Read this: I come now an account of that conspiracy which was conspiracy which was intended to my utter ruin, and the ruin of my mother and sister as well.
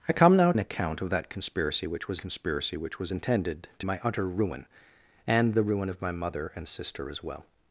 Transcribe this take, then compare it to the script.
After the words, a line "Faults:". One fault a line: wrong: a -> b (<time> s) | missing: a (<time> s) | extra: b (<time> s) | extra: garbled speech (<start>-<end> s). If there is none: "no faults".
I come now an account of that conspiracy which was conspiracy which was intended to my utter ruin, and the ruin of my mother and sister as well.
Faults:
no faults